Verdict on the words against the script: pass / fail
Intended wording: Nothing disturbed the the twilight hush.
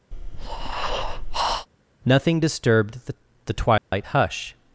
pass